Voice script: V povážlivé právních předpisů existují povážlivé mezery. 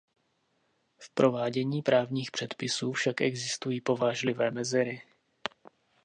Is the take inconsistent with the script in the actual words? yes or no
yes